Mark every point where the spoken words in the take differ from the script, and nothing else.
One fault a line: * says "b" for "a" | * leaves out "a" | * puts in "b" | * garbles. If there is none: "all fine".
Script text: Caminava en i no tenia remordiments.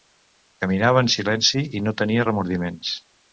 * puts in "silenci"